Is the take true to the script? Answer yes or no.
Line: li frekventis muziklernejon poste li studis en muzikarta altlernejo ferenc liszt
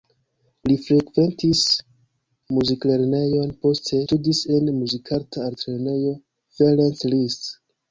no